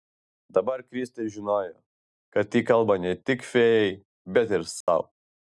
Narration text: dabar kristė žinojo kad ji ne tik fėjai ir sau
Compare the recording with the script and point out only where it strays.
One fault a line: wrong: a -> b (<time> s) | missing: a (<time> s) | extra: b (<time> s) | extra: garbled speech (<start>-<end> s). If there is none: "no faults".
extra: kalba (2.7 s)
extra: bet (4.4 s)